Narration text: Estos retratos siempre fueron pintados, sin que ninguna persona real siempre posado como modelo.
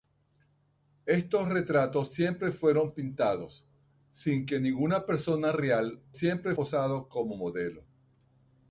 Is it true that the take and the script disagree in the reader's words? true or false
false